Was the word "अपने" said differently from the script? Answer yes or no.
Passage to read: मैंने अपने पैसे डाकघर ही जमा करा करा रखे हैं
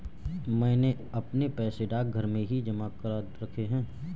no